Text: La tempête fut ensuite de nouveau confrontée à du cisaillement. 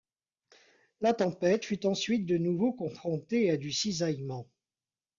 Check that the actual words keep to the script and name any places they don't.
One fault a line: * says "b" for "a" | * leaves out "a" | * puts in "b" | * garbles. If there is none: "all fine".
all fine